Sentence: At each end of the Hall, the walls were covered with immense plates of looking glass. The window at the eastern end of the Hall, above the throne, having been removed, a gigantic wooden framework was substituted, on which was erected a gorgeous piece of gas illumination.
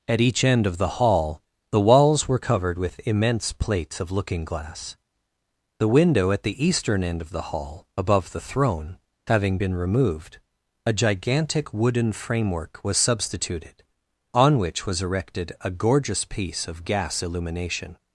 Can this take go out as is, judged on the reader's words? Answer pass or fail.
pass